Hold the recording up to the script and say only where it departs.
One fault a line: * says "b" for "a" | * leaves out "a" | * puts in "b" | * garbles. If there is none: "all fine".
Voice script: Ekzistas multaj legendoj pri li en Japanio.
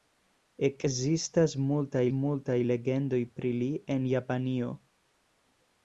* puts in "multaj"